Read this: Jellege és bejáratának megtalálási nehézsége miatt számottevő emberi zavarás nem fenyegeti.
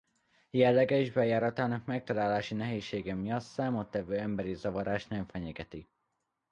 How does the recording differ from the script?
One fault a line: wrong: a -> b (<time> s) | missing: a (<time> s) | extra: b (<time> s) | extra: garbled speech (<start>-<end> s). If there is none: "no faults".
no faults